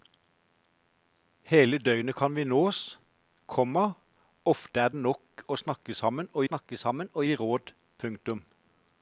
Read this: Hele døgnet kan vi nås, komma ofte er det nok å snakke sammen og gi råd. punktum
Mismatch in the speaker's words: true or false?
true